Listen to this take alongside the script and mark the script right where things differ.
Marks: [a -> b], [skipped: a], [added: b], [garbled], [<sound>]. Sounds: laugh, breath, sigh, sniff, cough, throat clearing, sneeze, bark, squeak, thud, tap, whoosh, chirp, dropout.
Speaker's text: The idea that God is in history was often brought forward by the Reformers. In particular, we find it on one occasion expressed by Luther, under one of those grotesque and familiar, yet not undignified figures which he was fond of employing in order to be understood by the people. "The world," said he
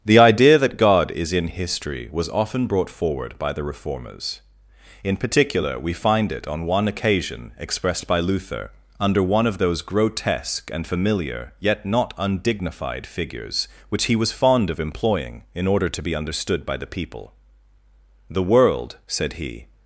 The idea that God is in history was often brought forward by the Reformers. In particular, we find it on one occasion expressed by Luther, under one of those grotesque and familiar, yet not undignified figures which he was fond of employing in order to be understood by the people. "The world," said he